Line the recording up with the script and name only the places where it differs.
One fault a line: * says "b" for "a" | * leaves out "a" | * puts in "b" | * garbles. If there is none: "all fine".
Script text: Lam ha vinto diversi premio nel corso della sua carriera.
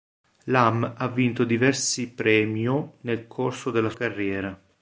* leaves out "sua"